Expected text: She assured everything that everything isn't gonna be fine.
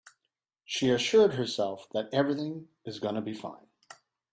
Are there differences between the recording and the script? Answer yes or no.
yes